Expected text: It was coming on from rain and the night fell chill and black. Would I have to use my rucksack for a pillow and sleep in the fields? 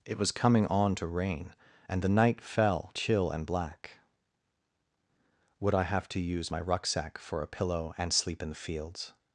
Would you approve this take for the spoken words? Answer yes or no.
no